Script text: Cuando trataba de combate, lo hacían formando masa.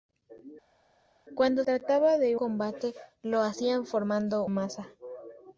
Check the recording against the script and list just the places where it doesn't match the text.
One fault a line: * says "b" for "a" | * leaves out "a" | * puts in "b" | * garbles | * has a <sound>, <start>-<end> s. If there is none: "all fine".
all fine